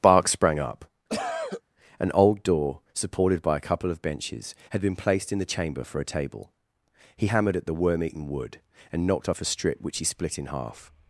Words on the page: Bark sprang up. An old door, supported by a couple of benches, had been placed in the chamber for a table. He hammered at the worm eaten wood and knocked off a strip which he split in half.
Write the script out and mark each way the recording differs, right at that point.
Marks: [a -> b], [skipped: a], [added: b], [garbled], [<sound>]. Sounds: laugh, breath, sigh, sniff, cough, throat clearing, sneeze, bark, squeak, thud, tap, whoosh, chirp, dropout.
Bark sprang up. [cough] An old door, supported by a couple of benches, had been placed in the chamber for a table. He hammered at the worm eaten wood and knocked off a strip which he split in half.